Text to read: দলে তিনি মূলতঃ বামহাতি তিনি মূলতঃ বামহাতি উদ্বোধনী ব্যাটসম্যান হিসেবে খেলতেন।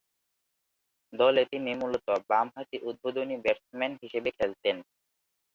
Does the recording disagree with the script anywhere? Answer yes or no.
yes